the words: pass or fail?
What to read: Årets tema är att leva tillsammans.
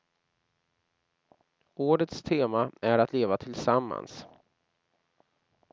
pass